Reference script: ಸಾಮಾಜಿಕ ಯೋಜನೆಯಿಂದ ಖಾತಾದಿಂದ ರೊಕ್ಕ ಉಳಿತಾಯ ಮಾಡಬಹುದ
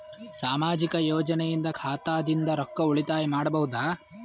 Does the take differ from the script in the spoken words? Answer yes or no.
no